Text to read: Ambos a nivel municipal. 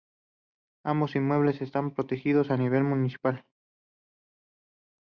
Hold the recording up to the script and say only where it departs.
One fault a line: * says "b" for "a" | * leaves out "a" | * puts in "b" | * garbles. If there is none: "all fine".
* puts in "inmuebles están protegidos"